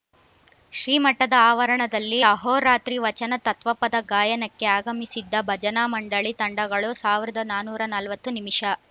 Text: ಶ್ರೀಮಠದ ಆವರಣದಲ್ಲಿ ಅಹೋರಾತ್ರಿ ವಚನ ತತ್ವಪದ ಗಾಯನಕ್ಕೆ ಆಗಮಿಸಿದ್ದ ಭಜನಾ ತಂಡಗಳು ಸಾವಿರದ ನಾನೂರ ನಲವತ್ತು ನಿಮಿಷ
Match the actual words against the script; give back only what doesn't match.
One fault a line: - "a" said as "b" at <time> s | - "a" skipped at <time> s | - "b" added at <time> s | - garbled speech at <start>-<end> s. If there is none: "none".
- "ಮಂಡಳಿ" added at 5.9 s